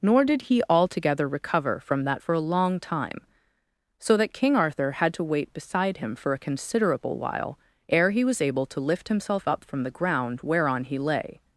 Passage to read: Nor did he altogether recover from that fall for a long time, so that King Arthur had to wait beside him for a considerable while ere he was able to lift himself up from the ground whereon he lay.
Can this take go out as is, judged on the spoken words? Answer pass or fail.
fail